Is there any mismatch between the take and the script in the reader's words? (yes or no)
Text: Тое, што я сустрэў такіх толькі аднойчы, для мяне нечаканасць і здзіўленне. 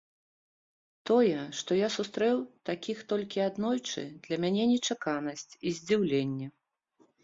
no